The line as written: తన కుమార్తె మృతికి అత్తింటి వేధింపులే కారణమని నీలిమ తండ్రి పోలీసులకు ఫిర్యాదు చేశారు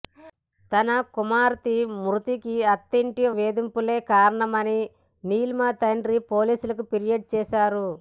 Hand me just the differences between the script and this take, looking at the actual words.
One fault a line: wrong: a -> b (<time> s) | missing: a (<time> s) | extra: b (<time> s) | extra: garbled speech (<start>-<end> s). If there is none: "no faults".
no faults